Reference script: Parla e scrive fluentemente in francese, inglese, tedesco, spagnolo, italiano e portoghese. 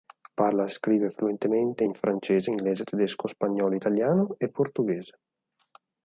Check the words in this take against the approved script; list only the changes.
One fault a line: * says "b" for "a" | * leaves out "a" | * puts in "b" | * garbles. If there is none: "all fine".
all fine